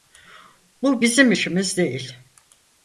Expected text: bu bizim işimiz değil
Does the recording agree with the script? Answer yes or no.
yes